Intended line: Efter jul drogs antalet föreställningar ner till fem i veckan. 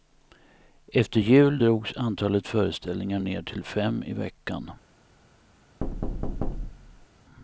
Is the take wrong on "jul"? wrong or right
right